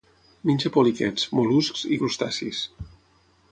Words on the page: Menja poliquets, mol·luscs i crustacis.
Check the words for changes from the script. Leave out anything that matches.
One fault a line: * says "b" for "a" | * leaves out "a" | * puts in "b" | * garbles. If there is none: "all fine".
all fine